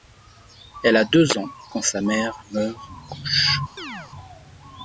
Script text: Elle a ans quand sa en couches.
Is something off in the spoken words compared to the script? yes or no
yes